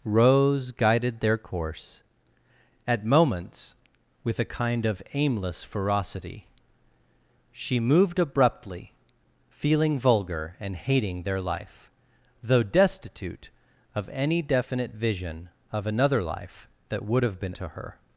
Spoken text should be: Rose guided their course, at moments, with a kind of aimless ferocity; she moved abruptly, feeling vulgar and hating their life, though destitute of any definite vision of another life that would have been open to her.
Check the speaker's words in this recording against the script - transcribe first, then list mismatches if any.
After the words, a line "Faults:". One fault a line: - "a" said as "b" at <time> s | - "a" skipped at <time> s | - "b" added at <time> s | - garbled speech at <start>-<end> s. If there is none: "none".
Rose guided their course, at moments, with a kind of aimless ferocity; she moved abruptly, feeling vulgar and hating their life, though destitute of any definite vision of another life that would have been to her.
Faults:
- "open" skipped at 17.6 s